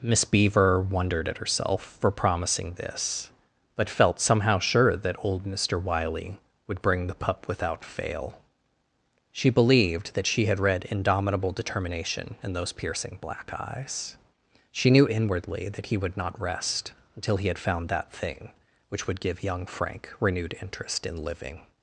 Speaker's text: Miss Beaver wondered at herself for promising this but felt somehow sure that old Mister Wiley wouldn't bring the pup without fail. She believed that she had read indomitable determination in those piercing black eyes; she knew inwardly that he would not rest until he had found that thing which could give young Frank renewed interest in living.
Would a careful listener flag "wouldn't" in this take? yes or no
yes